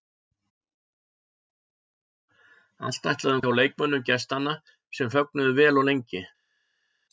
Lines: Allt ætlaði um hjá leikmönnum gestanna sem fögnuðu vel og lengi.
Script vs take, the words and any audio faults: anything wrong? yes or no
no